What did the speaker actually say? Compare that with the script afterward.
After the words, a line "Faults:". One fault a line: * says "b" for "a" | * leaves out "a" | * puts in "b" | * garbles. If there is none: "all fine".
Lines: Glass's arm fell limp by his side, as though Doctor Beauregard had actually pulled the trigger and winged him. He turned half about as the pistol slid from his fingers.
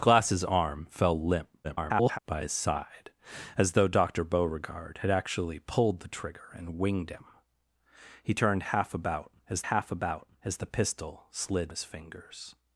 Glass's arm fell limp [garbled] by his side, as though Doctor Beauregard had actually pulled the trigger and winged him. He turned half about as half about as the pistol slid his fingers.
Faults:
* garbles
* puts in "half about as"
* leaves out "from"